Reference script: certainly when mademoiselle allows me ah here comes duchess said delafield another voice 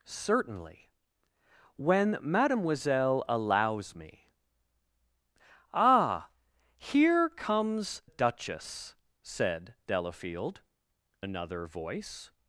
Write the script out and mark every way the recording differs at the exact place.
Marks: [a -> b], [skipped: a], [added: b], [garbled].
certainly when mademoiselle allows me ah here comes duchess said delafield another voice